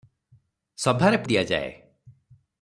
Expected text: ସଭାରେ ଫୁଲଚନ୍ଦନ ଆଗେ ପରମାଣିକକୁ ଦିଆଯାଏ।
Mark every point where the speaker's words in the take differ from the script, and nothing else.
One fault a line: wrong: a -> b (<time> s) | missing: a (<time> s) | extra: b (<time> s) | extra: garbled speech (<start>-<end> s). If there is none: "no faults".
missing: ଫୁଲଚନ୍ଦନ ଆଗେ ପରମାଣିକକୁ (1.2 s)